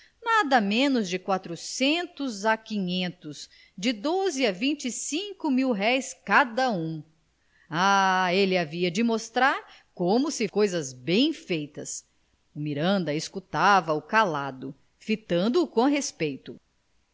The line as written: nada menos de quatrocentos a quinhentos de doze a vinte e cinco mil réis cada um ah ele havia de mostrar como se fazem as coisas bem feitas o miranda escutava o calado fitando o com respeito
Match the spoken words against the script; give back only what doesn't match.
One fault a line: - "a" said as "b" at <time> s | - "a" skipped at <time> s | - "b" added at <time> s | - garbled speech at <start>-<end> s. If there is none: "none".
- "fazem as" skipped at 10.5 s